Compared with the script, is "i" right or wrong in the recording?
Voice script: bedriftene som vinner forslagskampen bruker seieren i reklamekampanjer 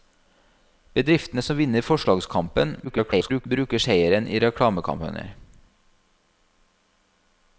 right